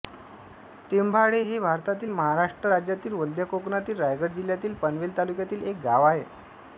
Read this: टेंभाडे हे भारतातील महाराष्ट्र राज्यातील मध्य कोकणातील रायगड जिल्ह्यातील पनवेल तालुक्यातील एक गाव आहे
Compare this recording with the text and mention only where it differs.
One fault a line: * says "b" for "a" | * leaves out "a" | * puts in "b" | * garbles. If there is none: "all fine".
all fine